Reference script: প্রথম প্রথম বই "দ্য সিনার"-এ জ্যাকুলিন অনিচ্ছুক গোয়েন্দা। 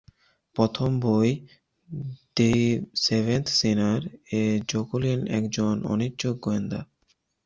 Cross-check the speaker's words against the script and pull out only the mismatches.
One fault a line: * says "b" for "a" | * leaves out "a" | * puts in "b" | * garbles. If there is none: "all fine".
* leaves out "প্রথম"
* puts in "সেভেন্থ"
* puts in "একজন"